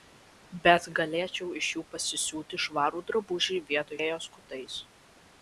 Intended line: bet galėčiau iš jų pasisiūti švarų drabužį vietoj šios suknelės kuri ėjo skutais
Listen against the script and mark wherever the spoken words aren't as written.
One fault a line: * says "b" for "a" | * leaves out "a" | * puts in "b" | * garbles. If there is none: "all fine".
* leaves out "šios suknelės kuri"